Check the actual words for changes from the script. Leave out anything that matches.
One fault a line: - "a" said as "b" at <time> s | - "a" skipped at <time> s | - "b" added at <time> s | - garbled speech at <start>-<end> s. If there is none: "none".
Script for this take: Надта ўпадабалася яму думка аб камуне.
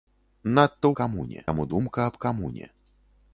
- "ўпадабалася" said as "камуне" at 1.0 s